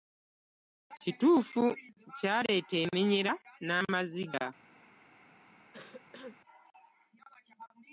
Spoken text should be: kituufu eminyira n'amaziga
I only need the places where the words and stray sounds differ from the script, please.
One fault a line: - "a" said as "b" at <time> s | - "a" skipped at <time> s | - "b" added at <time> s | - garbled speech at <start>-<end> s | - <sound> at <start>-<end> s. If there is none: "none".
- "kyaleeta" added at 2.2 s
- cough at 5.7-6.4 s